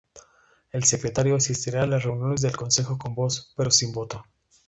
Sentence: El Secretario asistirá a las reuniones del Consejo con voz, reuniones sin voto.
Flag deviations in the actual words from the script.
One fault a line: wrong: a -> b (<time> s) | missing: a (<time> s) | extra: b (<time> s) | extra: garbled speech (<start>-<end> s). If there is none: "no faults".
wrong: reuniones -> pero (3.5 s)